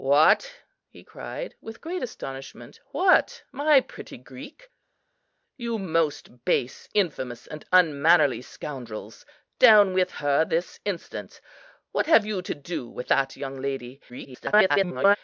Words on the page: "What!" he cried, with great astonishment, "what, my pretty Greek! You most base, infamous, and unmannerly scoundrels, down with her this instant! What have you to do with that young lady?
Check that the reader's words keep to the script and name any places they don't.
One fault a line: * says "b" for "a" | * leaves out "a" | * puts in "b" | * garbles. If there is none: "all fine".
* garbles